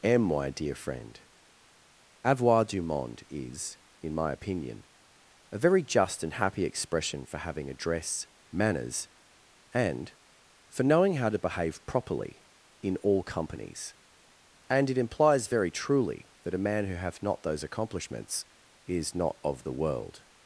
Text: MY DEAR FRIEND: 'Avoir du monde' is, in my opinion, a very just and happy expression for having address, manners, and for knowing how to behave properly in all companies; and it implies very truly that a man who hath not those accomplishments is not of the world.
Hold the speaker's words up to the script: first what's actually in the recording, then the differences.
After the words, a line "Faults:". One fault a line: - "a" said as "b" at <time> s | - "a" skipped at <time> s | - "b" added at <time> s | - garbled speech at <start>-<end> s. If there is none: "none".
am MY DEAR FRIEND: 'Avoir du monde' is, in my opinion, a very just and happy expression for having address, manners, and for knowing how to behave properly in all companies; and it implies very truly that a man who hath not those accomplishments is not of the world.
Faults:
- "am" added at 0.0 s